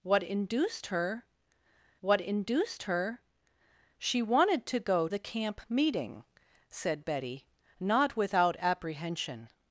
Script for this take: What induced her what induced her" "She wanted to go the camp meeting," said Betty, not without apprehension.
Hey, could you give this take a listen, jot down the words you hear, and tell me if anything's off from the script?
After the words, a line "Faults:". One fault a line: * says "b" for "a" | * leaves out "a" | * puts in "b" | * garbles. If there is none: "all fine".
What induced her what induced her" "She wanted to go the camp meeting," said Betty, not without apprehension.
Faults:
all fine